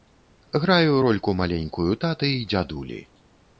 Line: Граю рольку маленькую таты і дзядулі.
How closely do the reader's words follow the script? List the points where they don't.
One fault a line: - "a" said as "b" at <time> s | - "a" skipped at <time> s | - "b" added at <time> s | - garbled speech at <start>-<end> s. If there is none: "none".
none